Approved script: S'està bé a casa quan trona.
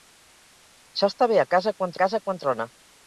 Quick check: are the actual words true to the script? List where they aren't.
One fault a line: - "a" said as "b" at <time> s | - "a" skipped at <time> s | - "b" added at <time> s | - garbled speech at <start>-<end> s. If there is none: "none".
- "casa quan" added at 2.0 s